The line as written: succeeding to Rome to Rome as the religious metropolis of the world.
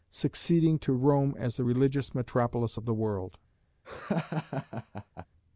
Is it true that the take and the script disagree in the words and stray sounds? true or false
true